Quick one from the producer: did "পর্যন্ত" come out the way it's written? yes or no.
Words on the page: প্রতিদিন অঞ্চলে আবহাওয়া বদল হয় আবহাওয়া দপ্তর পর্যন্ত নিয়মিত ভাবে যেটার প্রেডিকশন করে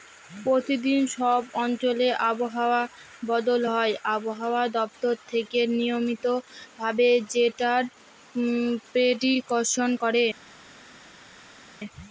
no